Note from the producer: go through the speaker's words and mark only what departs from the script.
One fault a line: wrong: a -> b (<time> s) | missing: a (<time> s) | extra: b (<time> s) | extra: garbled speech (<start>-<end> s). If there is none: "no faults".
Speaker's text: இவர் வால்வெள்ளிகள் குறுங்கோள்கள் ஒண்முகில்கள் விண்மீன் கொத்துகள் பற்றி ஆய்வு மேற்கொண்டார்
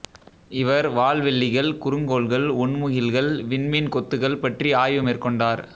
no faults